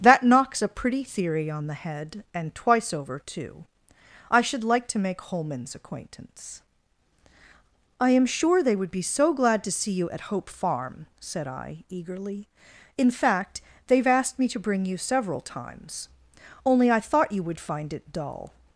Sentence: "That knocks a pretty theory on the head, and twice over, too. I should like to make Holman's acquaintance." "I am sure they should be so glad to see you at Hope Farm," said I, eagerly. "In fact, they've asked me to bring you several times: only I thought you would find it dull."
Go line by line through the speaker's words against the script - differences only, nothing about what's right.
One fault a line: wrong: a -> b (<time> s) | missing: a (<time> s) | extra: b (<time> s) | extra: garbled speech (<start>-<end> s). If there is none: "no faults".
wrong: should -> would (8.8 s)